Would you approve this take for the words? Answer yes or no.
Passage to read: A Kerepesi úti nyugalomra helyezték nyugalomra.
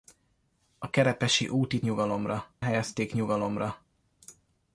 yes